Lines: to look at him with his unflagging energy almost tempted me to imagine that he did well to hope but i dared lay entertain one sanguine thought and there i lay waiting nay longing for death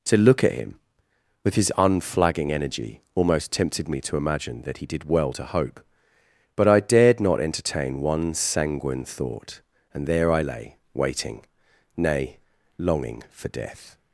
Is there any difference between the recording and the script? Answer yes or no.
yes